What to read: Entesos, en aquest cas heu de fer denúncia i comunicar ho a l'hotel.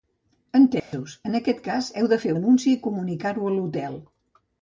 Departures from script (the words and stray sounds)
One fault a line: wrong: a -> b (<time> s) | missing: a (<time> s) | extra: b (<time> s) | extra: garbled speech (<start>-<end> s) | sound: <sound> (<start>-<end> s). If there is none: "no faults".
sound: dropout (0.8-0.9 s)